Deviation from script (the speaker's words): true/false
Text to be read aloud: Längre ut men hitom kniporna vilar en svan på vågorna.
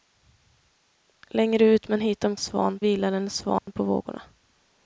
true